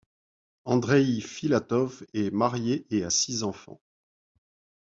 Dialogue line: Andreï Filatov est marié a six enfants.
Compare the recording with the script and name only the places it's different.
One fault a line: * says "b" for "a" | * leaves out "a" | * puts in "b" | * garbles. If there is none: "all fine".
* puts in "et"